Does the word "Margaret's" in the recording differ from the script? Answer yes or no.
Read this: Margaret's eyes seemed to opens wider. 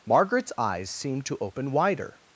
no